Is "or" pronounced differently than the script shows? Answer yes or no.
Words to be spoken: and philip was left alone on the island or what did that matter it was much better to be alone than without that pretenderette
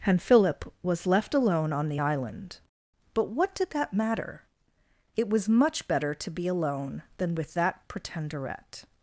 yes